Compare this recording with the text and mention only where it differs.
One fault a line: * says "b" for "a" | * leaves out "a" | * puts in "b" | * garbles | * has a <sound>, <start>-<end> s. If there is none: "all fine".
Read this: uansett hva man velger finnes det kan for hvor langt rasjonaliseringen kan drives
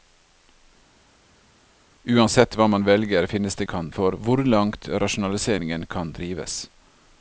all fine